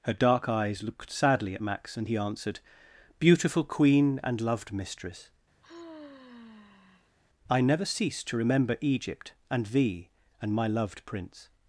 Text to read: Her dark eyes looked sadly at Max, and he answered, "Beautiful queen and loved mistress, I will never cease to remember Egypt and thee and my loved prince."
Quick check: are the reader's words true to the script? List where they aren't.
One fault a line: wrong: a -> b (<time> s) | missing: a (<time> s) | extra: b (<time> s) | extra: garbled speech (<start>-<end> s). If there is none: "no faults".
missing: will (7.6 s)